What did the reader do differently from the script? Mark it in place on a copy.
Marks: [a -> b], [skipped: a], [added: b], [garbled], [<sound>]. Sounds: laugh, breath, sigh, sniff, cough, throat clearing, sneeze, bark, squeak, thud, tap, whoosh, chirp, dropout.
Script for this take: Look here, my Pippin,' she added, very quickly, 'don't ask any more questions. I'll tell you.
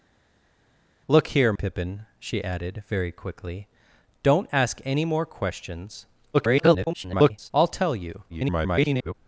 Look here, [skipped: my] Pippin,' she added, very quickly, 'don't ask any more questions. [garbled] I'll tell you. [garbled]